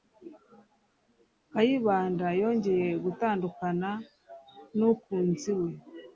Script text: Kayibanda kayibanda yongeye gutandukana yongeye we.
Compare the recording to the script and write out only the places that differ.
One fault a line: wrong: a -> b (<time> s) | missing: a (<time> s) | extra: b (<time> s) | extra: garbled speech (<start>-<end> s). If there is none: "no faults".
missing: kayibanda (2.3 s)
wrong: yongeye -> nukunzi (4.8 s)